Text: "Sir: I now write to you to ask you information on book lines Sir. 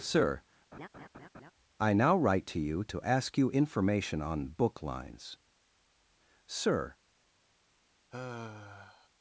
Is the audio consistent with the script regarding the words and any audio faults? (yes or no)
no